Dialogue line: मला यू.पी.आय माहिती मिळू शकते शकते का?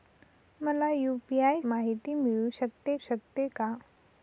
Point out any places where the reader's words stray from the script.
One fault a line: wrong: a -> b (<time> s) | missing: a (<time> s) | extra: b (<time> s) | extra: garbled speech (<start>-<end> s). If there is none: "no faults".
no faults